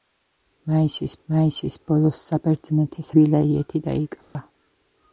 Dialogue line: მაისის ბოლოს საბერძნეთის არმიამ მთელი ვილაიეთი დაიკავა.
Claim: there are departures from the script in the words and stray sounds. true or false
true